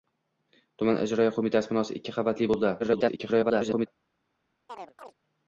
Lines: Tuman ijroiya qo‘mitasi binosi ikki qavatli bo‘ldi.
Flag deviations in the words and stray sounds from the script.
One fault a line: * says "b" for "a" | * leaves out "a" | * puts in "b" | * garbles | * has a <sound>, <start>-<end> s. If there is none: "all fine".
* garbles
* has a chirp, 4.7-5.1 s